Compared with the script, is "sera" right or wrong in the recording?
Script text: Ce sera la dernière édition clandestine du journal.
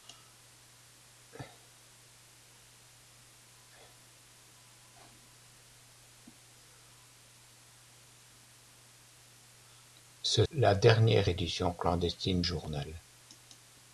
wrong